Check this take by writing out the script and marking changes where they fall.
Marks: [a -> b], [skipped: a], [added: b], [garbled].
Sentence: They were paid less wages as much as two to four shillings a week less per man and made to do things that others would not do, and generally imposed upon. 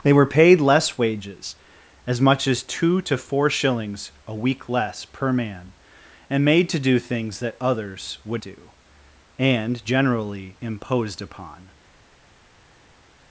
They were paid less wages as much as two to four shillings a week less per man and made to do things that others would [skipped: not] do, and generally imposed upon.